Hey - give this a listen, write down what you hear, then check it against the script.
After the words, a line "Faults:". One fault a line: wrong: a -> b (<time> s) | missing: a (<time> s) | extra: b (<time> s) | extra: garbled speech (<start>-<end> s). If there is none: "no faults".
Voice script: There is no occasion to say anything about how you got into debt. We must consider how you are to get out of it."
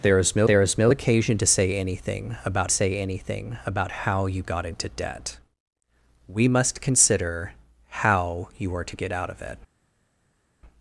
There is no there is no occasion to say anything about say anything about how you got into debt. We must consider how you are to get out of it."
Faults:
extra: there is no (0.4 s)
extra: say anything about (2.7 s)